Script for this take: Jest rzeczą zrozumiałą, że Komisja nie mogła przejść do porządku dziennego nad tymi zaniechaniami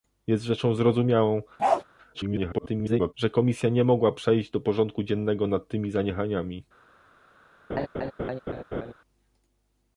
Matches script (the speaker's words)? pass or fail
fail